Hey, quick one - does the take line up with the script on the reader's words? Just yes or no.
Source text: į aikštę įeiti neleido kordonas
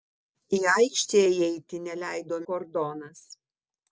yes